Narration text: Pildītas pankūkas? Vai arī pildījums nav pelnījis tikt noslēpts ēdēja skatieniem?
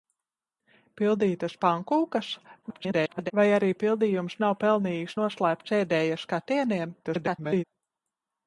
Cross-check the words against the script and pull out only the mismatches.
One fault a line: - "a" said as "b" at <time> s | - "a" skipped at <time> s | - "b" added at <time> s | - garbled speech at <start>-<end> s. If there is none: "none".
- garbled speech at 2.6-3.3 s
- "tikt" skipped at 5.2 s
- garbled speech at 7.0-7.6 s